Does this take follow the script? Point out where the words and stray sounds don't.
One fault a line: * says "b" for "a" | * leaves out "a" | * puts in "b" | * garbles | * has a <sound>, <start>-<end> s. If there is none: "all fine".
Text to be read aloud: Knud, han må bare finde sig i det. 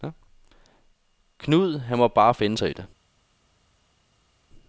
all fine